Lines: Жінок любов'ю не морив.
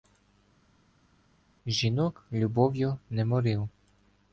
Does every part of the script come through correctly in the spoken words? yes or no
yes